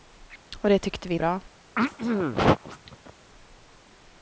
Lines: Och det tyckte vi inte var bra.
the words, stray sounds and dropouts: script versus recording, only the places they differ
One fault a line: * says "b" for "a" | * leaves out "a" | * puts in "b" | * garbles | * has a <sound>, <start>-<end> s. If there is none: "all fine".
* leaves out "inte var"
* has a throat clearing, 1.8-3.1 s